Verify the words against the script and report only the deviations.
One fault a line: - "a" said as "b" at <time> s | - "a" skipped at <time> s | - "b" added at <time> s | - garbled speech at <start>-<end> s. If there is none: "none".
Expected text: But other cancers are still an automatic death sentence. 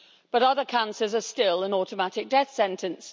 none